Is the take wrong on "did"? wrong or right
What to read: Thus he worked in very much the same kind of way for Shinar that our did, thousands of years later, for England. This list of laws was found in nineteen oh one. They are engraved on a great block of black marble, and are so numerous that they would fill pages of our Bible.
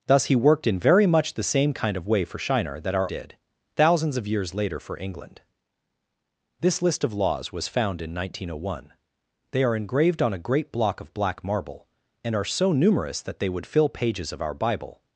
right